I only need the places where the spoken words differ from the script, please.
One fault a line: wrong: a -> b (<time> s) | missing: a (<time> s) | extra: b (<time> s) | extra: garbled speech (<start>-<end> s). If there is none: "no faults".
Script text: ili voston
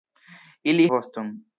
no faults